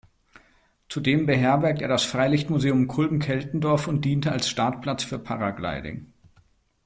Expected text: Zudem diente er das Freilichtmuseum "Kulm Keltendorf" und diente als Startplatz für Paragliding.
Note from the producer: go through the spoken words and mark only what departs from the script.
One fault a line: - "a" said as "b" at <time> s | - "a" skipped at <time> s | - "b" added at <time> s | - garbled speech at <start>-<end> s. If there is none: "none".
- "diente" said as "beherbergt" at 1.3 s